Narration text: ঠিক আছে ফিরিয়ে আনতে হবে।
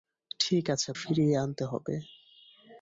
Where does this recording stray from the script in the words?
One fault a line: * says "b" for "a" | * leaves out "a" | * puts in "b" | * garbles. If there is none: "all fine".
all fine